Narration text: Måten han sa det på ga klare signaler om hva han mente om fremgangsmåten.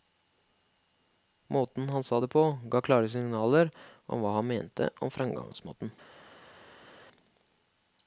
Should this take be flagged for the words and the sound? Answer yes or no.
no